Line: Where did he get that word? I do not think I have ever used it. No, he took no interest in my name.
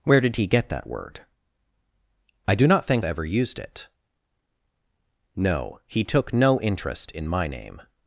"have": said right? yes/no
no